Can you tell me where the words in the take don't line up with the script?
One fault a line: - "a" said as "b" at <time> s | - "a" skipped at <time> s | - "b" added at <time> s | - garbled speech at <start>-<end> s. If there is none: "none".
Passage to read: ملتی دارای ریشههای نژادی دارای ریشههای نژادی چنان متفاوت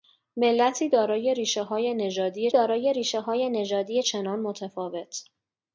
none